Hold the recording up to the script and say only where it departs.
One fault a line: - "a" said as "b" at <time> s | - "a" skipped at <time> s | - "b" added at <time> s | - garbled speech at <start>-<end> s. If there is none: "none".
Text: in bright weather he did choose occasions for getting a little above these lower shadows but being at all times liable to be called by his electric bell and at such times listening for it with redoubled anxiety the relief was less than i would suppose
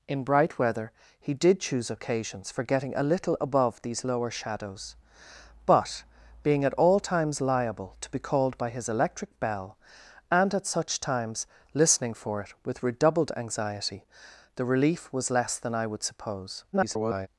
- garbled speech at 16.7-17.3 s